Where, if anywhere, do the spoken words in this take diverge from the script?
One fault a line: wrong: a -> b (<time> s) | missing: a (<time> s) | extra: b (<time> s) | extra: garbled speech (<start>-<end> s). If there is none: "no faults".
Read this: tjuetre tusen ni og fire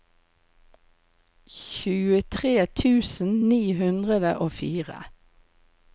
extra: hundre (3.8 s)